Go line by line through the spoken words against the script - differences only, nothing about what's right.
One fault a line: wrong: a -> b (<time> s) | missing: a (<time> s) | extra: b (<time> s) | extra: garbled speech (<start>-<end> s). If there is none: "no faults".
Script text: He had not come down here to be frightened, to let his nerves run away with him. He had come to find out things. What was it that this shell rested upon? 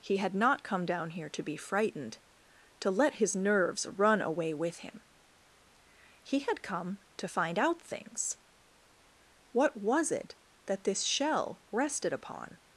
no faults